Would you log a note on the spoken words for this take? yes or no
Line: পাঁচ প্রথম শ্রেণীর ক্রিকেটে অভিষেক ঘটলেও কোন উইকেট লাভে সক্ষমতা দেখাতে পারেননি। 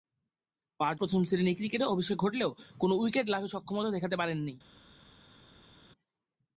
no